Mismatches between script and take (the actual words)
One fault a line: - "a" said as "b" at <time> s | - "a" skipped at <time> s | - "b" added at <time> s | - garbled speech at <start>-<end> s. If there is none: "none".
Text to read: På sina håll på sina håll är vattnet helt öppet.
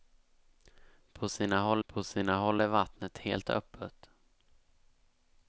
none